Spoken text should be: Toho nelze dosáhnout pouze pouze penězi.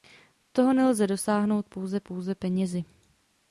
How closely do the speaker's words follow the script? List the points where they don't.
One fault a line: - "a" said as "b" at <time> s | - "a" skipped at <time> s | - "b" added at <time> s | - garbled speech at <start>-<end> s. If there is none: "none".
none